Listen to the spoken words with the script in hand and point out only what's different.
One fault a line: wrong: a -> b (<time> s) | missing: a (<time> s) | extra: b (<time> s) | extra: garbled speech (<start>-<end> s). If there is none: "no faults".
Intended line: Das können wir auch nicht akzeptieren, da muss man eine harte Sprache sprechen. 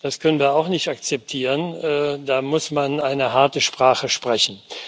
no faults